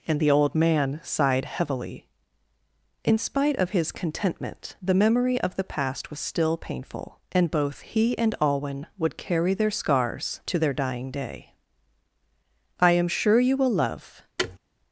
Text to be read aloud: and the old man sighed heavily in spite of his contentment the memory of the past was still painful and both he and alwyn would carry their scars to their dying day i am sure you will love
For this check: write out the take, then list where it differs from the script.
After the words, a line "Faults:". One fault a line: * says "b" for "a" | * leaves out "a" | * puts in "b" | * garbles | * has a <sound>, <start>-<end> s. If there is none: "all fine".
and the old man sighed heavily in spite of his contentment the memory of the past was still painful and both he and alwyn would carry their scars to their dying day i am sure you will love
Faults:
* has a thud, 14.4-14.6 s